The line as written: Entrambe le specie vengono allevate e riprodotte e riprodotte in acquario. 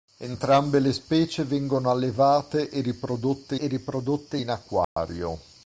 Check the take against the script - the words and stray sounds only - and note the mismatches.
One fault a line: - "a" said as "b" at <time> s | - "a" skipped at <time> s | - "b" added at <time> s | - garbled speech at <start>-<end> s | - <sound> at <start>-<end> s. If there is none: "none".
- dropout at 4.8-5.0 s